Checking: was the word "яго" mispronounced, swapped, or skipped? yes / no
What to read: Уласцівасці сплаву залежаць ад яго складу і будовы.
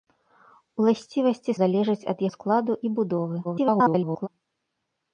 yes